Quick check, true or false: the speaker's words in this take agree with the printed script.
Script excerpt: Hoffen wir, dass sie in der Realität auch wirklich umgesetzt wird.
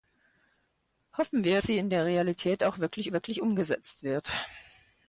false